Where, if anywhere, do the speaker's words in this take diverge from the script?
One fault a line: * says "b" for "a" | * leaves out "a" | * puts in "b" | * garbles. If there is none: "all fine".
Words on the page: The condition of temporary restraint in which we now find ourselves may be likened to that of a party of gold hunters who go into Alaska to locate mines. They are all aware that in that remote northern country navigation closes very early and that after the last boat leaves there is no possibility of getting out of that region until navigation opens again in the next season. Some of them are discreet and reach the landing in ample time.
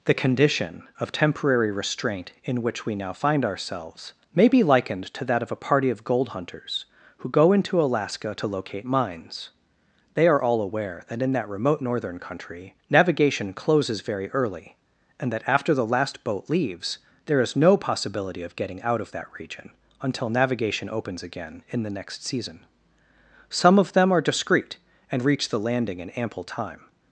all fine